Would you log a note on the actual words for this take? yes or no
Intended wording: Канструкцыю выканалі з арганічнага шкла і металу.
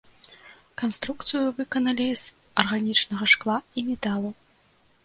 no